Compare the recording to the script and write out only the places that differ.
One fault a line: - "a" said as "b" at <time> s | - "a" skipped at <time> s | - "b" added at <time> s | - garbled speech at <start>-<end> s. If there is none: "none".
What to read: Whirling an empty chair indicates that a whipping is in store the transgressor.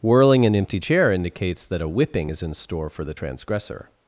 - "for" added at 2.9 s